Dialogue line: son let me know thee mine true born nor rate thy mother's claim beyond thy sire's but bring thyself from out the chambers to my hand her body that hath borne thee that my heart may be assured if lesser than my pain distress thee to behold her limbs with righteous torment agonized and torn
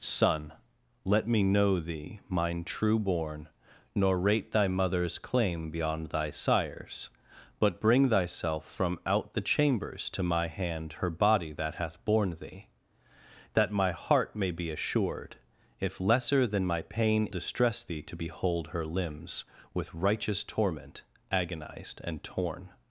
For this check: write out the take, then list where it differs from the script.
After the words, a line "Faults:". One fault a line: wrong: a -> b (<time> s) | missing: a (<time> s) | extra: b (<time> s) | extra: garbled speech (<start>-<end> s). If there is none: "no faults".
son let me know thee mine true born nor rate thy mother's claim beyond thy sire's but bring thyself from out the chambers to my hand her body that hath borne thee that my heart may be assured if lesser than my pain distress thee to behold her limbs with righteous torment agonized and torn
Faults:
no faults